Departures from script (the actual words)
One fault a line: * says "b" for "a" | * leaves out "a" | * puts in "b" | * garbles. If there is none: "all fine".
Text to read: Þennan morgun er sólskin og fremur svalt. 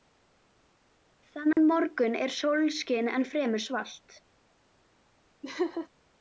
* says "en" for "og"